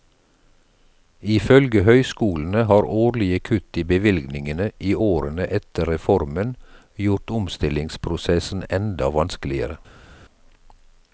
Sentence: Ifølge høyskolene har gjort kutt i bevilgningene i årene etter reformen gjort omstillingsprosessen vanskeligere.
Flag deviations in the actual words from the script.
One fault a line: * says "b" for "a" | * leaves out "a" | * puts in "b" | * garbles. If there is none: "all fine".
* says "årlige" for "gjort"
* puts in "enda"